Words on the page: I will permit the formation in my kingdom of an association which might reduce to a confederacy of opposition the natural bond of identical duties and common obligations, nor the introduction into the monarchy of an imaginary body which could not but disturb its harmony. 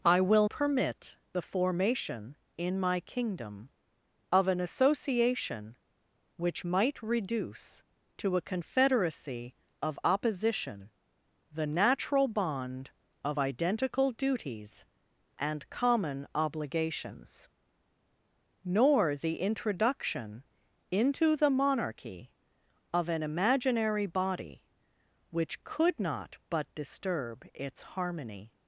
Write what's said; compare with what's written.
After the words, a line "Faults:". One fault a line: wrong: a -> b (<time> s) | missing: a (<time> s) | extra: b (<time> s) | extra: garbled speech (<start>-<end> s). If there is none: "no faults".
I will permit the formation in my kingdom of an association which might reduce to a confederacy of opposition the natural bond of identical duties and common obligations, nor the introduction into the monarchy of an imaginary body which could not but disturb its harmony.
Faults:
no faults